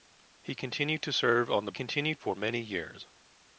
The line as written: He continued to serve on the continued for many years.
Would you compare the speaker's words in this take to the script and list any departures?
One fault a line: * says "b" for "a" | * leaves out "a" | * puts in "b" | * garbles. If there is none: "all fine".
all fine